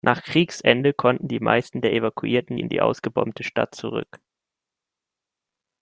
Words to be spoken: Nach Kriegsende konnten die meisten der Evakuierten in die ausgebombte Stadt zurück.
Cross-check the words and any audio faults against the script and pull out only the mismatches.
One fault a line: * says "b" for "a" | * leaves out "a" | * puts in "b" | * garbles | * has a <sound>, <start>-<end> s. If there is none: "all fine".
all fine